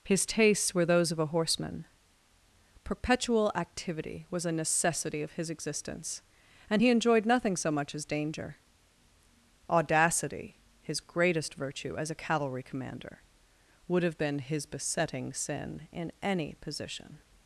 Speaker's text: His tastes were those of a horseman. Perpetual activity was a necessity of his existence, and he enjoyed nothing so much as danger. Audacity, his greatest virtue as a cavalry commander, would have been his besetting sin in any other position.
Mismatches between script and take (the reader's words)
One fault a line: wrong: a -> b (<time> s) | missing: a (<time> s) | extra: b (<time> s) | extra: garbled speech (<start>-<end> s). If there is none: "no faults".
missing: other (16.5 s)